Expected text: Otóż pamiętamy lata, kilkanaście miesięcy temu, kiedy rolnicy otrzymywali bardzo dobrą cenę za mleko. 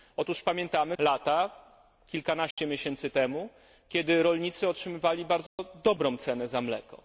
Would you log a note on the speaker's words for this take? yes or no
no